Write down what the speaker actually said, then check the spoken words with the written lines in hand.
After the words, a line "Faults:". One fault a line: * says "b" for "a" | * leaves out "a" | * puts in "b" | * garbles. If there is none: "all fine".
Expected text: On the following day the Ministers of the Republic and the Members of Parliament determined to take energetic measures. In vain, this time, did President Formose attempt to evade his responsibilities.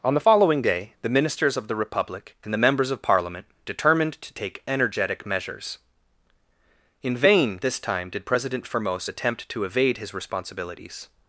On the following day the Ministers of the Republic and the Members of Parliament determined to take energetic measures. In vain, this time, did President Formose attempt to evade his responsibilities.
Faults:
all fine